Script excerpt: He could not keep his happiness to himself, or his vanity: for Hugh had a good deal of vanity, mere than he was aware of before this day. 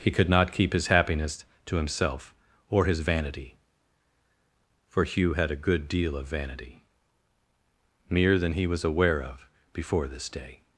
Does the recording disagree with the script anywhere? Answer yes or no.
no